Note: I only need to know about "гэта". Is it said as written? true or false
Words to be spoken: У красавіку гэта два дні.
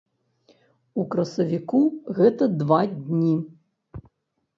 true